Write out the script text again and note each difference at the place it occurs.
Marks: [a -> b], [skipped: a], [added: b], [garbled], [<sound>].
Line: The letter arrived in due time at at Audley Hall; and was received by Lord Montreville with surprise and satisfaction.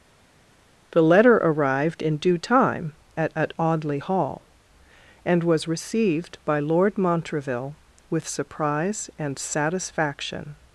The letter arrived in due time at at Audley Hall; and was received by Lord Montreville with surprise and satisfaction.